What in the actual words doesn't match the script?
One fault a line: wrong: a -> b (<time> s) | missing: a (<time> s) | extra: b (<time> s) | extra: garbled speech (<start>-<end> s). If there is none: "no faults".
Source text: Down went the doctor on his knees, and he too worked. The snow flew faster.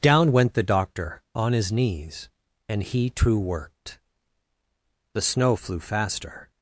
no faults